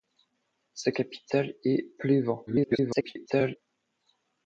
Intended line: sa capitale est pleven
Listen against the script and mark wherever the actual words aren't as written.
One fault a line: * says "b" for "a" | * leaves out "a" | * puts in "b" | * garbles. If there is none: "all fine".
* garbles